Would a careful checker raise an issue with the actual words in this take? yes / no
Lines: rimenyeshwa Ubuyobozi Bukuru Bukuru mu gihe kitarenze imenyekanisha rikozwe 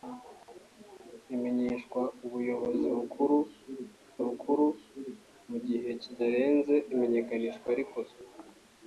no